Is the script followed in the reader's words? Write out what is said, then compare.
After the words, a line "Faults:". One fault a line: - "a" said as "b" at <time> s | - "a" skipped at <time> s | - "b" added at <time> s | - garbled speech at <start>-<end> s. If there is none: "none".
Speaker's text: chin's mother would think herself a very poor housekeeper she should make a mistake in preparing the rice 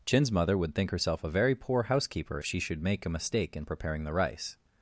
chin's mother would think herself a very poor housekeeper she should make a mistake in preparing the rice
Faults:
none